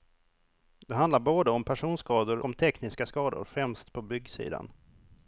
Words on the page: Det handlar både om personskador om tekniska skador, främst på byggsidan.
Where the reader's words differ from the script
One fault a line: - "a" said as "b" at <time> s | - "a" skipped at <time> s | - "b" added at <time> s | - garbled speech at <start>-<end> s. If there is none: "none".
none